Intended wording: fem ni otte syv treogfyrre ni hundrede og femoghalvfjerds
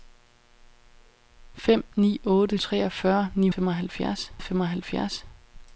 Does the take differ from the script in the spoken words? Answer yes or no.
yes